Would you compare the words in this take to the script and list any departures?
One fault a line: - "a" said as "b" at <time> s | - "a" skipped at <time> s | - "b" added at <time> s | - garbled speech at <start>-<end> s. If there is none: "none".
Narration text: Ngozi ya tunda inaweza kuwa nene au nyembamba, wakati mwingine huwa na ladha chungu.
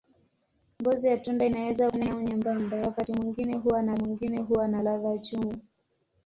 - "kuwa" skipped at 1.9 s
- "mwingine huwa na" added at 3.9 s